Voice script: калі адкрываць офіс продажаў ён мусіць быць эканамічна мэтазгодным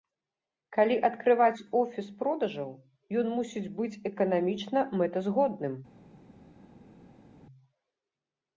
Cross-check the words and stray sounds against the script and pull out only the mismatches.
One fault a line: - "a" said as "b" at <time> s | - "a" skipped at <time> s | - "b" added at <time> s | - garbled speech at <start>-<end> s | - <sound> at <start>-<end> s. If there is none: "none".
none